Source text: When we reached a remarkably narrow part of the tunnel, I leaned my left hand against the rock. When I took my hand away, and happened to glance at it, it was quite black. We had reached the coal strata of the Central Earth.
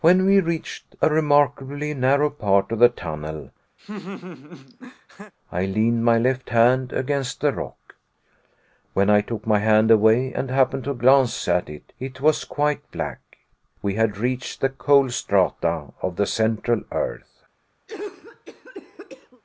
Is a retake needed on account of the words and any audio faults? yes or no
yes